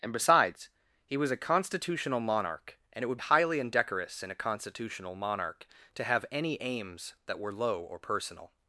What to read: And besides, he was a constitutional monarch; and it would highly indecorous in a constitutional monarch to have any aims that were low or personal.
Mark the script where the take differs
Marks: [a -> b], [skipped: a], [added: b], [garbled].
And besides, he was a constitutional monarch; and it would highly indecorous in a constitutional monarch to have any aims that were low or personal.